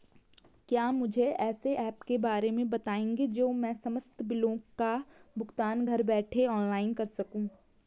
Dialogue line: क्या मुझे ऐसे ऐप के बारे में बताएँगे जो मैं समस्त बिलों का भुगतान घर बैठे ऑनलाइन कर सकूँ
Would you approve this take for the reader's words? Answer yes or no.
yes